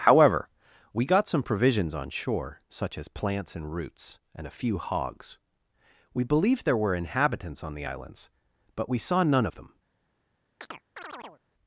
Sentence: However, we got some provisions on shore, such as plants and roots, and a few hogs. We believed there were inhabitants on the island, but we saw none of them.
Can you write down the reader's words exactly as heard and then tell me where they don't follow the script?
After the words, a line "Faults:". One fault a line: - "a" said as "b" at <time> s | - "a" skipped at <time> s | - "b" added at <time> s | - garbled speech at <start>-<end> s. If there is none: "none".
However, we got some provisions on shore, such as plants and roots, and a few hogs. We believed there were inhabitants on the islands, but we saw none of them.
Faults:
- "island" said as "islands" at 7.8 s